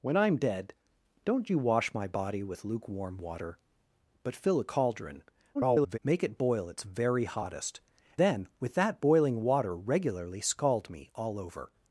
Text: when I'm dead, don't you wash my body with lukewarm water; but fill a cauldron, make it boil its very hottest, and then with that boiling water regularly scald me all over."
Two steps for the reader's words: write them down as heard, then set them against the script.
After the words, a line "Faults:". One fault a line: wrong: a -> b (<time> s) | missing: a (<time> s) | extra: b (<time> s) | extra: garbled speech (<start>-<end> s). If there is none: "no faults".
when I'm dead, don't you wash my body with lukewarm water; but fill a cauldron, [garbled] make it boil its very hottest, then with that boiling water regularly scald me all over."
Faults:
extra: garbled speech (5.5-6.0 s)
missing: and (7.8 s)